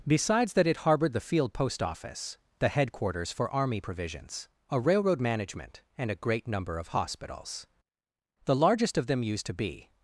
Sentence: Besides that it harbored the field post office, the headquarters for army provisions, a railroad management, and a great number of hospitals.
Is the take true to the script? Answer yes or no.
no